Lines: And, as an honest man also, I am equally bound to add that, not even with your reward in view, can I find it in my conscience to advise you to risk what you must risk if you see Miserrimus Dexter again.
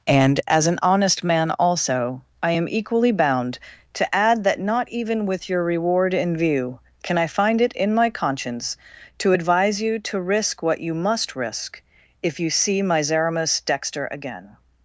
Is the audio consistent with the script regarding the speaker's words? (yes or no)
yes